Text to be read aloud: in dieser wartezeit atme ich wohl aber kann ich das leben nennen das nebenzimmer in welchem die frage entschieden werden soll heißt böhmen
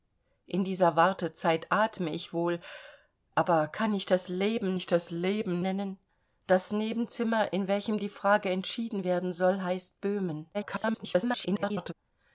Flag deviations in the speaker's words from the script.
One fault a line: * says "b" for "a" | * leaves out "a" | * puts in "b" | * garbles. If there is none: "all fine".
* puts in "ich das leben"
* garbles